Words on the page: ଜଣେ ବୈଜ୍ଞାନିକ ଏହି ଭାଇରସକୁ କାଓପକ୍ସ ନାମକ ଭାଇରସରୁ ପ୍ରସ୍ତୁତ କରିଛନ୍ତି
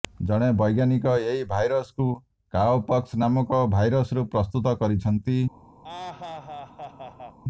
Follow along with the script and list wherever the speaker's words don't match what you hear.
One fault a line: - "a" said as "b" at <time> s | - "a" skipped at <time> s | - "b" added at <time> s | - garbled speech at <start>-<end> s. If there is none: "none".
none